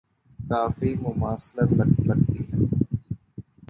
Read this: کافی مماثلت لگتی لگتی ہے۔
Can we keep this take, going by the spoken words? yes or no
yes